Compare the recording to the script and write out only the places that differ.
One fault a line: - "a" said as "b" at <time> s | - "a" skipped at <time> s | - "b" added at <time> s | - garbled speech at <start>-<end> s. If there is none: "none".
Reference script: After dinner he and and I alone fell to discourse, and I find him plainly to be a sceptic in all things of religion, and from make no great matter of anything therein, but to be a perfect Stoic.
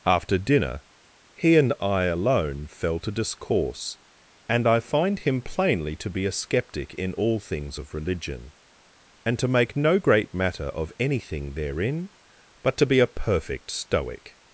- "and" skipped at 1.7 s
- "from" said as "to" at 9.4 s